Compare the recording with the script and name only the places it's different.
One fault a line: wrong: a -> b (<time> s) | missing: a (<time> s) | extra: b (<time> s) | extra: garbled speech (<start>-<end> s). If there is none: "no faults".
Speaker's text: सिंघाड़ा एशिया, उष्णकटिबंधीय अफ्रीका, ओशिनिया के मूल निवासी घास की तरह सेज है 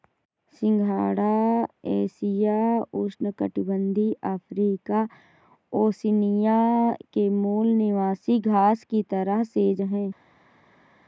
no faults